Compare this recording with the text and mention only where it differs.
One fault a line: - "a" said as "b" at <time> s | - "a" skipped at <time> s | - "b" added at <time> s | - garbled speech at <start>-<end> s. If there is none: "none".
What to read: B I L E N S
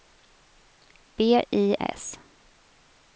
- "L E N" skipped at 1.8 s